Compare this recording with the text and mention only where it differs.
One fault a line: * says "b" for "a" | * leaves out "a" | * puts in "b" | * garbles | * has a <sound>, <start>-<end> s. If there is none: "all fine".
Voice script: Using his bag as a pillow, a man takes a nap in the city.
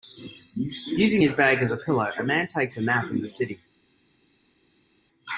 all fine